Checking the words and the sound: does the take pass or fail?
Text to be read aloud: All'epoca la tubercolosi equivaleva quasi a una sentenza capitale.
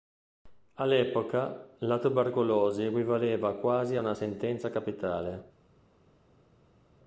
pass